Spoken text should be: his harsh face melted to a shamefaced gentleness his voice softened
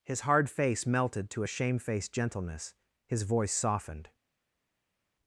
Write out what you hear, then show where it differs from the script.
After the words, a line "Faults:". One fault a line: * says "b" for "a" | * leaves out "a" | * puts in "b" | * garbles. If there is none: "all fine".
his hard face melted to a shamefaced gentleness his voice softened
Faults:
* says "hard" for "harsh"